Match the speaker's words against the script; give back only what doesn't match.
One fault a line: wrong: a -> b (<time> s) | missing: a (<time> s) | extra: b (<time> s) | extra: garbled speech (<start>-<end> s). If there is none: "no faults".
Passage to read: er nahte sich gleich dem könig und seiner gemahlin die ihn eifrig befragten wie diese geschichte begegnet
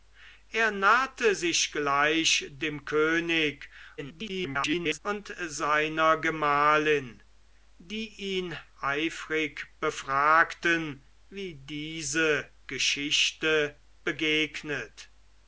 extra: garbled speech (4.0-5.0 s)